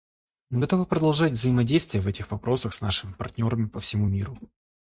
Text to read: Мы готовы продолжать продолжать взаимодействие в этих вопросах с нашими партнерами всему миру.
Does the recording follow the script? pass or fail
fail